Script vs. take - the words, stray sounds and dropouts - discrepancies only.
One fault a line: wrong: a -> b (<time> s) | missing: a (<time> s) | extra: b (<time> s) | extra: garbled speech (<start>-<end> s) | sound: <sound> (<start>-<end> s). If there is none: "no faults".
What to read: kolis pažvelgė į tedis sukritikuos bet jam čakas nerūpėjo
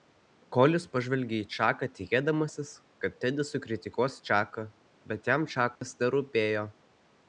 extra: čaką tikėdamasis kad (1.6 s)
extra: čaką (4.3 s)
sound: dropout (5.8-5.8 s)